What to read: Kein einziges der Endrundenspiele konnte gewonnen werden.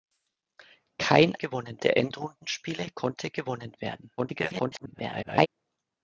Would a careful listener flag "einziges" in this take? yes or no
yes